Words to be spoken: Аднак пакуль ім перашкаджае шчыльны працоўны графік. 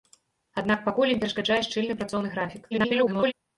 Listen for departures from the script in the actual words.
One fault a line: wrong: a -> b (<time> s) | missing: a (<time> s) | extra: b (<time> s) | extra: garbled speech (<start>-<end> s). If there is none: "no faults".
extra: garbled speech (2.7-3.3 s)